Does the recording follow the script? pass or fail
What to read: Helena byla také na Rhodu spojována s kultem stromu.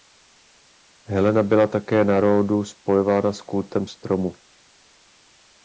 pass